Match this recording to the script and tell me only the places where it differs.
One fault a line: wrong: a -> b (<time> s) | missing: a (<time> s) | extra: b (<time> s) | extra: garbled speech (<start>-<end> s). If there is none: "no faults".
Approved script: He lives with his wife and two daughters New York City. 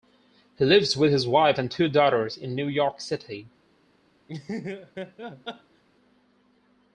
extra: in (2.4 s)